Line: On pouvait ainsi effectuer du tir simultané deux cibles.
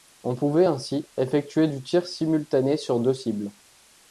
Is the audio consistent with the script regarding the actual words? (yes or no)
no